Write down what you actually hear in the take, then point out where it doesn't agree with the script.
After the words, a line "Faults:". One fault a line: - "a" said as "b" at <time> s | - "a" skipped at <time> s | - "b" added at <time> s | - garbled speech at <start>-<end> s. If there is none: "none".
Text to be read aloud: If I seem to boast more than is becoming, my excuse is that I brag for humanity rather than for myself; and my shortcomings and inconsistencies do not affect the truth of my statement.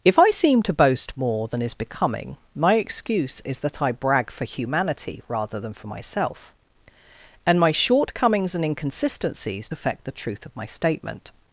If I seem to boast more than is becoming, my excuse is that I brag for humanity rather than for myself; and my shortcomings and inconsistencies affect the truth of my statement.
Faults:
- "do not" skipped at 9.7 s